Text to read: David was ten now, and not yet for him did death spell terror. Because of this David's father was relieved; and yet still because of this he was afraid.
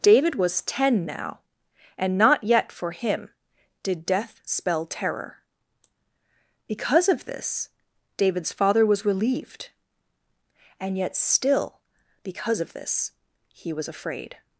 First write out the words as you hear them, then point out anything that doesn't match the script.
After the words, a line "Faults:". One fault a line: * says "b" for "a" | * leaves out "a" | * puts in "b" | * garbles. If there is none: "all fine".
David was ten now, and not yet for him did death spell terror. Because of this David's father was relieved; and yet still because of this he was afraid.
Faults:
all fine